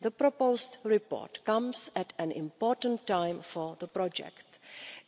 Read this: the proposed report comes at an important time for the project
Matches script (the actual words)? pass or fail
pass